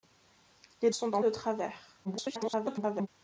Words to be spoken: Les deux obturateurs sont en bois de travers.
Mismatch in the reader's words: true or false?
true